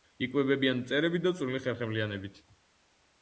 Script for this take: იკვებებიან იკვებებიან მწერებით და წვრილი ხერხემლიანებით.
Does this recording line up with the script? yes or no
no